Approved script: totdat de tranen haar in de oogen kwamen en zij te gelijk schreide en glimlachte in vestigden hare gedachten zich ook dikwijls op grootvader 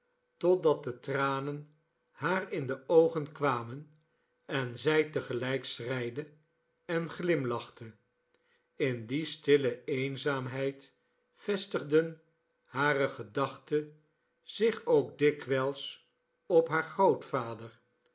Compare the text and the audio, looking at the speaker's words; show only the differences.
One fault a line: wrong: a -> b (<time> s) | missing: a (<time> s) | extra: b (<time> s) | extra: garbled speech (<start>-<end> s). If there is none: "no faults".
extra: die stille eenzaamheid (9.1 s)
extra: haar (16.7 s)